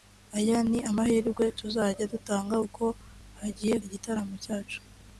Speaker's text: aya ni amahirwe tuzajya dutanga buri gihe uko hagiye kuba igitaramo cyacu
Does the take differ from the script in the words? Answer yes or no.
yes